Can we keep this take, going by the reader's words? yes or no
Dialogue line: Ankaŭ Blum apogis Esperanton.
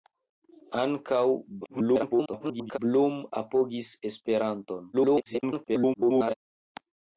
no